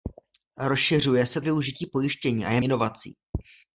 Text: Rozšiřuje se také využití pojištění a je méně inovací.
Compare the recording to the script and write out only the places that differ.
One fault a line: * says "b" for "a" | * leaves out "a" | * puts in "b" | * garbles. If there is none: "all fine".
* leaves out "také"
* leaves out "méně"